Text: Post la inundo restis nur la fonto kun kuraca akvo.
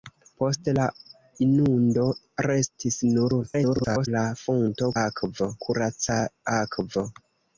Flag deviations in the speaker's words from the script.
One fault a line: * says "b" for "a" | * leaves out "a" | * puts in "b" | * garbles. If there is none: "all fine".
* garbles
* says "akvo" for "kun"